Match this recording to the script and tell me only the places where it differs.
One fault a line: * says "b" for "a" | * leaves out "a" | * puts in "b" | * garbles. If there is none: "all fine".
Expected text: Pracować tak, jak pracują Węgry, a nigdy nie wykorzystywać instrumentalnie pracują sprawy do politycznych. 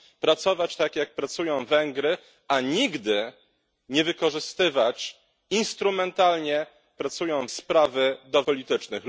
all fine